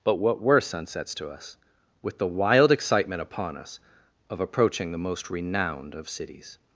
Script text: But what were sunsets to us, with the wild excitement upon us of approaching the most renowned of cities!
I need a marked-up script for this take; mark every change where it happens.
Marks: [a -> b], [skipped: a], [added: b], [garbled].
But what were sunsets to us, with the wild excitement upon us of approaching the most renowned of cities!